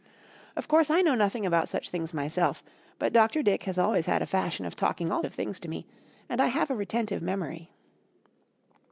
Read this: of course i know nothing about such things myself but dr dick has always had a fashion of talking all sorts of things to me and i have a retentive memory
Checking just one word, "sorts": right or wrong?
wrong